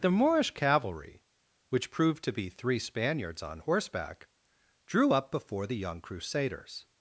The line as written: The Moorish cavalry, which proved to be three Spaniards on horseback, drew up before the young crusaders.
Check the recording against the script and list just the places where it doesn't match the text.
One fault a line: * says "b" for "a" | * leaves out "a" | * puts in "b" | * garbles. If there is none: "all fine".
all fine